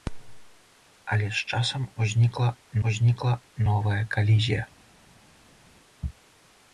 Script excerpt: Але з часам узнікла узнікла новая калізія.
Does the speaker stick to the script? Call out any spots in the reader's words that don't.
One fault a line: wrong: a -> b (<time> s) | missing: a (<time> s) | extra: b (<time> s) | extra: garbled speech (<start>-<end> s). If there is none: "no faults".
no faults